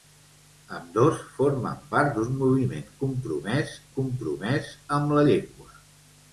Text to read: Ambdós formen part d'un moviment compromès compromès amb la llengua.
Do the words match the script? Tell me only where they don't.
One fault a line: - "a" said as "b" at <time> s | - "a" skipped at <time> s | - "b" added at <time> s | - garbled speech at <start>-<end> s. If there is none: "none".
none